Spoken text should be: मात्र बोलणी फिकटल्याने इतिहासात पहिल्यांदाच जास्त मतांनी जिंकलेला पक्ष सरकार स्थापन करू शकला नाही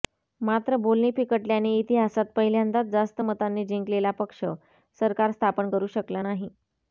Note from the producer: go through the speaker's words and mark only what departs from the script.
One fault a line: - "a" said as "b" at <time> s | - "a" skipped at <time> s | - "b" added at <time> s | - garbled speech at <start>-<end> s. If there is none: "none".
none